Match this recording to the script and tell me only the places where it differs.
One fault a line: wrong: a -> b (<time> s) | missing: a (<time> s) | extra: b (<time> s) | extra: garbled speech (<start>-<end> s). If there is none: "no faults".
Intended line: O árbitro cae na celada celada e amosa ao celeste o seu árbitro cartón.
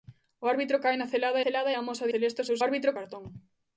no faults